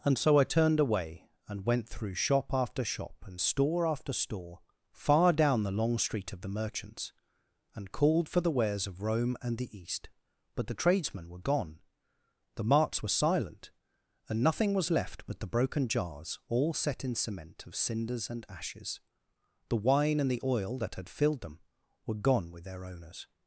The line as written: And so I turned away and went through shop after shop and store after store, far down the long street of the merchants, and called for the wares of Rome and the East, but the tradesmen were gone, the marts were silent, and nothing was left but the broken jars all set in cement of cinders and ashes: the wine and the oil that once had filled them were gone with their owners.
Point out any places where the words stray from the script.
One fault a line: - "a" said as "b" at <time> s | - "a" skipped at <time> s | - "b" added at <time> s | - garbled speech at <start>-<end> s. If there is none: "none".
- "once" skipped at 20.9 s